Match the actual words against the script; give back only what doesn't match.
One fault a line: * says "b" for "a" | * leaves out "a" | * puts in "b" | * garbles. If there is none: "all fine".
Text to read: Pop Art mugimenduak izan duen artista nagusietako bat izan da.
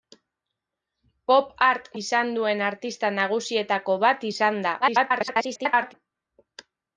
* leaves out "mugimenduak"
* garbles